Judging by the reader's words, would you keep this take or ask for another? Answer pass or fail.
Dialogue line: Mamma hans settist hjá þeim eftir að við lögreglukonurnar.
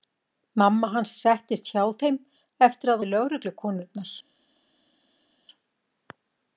pass